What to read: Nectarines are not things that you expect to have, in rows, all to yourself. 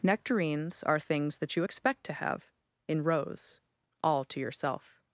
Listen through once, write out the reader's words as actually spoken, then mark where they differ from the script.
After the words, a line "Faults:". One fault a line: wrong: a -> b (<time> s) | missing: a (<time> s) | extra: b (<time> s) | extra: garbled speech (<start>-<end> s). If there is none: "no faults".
Nectarines are things that you expect to have, in rows, all to yourself.
Faults:
missing: not (1.0 s)